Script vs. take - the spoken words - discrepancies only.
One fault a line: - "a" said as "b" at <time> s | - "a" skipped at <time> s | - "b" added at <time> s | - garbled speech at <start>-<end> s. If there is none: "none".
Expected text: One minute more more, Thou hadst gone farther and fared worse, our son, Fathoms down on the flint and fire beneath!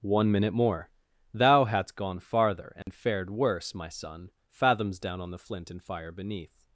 - "more" skipped at 0.9 s
- "our" said as "my" at 3.7 s